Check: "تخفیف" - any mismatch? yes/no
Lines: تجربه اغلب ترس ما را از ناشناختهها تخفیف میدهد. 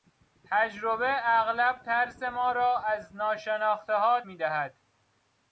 yes